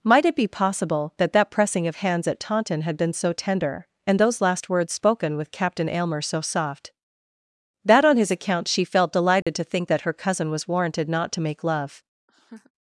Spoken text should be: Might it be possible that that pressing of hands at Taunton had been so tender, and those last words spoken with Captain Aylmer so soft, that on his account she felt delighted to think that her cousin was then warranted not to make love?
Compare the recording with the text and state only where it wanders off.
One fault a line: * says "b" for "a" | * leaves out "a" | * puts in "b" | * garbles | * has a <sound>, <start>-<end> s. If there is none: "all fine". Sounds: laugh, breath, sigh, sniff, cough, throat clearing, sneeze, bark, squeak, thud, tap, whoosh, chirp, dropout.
* has a dropout, 9.4-9.5 s
* leaves out "then"
* has a laugh, 12.3-12.7 s